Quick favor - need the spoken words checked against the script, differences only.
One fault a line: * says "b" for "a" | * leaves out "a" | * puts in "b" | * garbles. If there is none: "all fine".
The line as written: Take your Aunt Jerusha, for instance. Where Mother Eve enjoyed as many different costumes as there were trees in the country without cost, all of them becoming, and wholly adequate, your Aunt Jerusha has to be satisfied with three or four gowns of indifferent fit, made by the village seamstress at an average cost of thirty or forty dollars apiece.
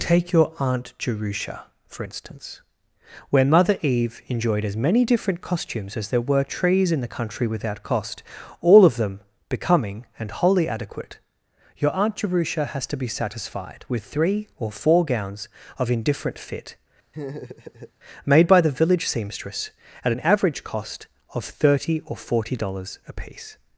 all fine